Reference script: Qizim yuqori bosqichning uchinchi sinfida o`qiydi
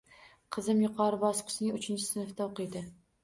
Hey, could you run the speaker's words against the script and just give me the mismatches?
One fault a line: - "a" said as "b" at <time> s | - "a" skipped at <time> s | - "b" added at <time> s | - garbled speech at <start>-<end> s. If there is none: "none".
none